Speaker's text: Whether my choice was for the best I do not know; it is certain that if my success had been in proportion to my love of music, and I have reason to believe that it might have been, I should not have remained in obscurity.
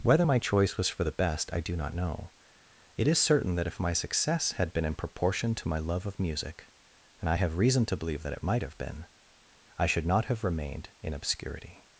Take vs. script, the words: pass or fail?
pass